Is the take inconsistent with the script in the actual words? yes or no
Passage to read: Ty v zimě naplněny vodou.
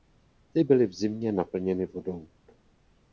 yes